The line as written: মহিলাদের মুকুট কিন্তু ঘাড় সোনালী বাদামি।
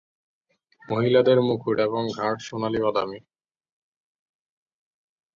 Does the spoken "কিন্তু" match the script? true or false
false